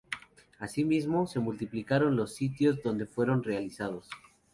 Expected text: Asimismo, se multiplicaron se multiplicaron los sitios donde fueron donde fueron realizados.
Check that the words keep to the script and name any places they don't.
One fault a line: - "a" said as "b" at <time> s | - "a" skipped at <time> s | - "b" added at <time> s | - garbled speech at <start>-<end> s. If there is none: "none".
- "se multiplicaron" skipped at 2.1 s
- "donde fueron" skipped at 3.4 s